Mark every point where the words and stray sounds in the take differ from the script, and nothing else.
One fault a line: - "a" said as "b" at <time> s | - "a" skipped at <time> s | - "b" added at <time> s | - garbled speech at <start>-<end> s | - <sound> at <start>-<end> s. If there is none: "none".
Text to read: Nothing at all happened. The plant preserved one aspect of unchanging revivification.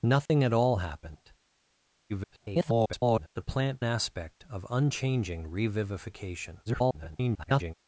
- dropout at 0.3-0.3 s
- garbled speech at 2.1-3.3 s
- "preserved one" skipped at 3.8 s
- garbled speech at 6.7-7.7 s